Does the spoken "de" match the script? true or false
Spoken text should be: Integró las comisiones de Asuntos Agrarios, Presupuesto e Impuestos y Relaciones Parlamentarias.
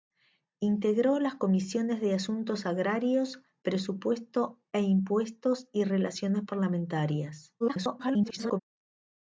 true